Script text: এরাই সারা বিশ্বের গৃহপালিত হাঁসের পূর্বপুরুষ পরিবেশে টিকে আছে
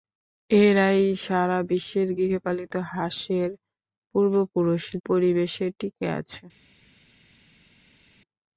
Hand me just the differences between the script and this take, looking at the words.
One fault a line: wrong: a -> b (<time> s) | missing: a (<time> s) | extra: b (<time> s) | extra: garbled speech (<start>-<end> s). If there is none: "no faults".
no faults